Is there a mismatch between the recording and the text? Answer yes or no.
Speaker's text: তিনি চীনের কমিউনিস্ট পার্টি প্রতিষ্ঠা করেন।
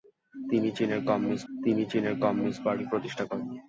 yes